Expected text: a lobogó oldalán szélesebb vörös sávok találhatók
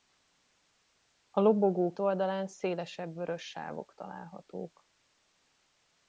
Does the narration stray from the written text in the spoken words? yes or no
no